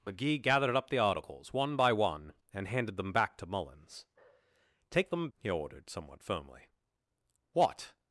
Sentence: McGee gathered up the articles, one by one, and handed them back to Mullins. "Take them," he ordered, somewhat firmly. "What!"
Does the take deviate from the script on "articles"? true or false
false